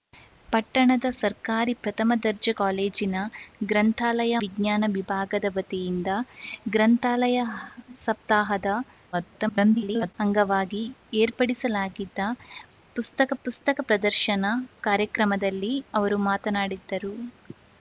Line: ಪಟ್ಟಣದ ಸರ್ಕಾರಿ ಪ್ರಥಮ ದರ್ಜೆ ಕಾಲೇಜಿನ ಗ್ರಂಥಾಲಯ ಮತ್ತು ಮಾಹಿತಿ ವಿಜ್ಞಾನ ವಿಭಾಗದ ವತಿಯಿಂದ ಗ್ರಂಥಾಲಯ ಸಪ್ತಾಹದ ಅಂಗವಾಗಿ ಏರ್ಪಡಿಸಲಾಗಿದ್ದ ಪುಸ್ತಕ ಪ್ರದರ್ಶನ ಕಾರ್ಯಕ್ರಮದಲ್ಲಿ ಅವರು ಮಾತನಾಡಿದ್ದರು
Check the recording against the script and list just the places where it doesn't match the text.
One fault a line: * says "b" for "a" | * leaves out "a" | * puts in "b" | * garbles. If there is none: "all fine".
* leaves out "ಮತ್ತು ಮಾಹಿತಿ"
* garbles
* puts in "ಪುಸ್ತಕ"